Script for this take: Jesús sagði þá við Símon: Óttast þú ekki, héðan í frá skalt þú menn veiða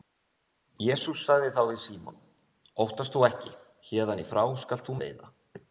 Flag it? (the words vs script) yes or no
yes